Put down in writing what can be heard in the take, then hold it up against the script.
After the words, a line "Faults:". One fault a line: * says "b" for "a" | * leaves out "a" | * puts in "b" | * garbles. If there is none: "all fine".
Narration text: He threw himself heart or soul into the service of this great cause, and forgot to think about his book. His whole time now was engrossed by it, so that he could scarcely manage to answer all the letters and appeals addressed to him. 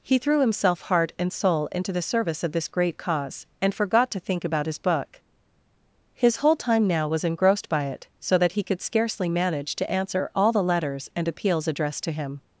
He threw himself heart and soul into the service of this great cause, and forgot to think about his book. His whole time now was engrossed by it, so that he could scarcely manage to answer all the letters and appeals addressed to him.
Faults:
* says "and" for "or"